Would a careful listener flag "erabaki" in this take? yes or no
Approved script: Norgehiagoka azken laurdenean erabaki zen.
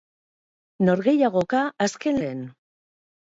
yes